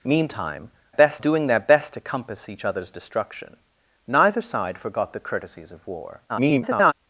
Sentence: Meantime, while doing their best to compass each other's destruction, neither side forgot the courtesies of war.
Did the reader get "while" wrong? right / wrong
wrong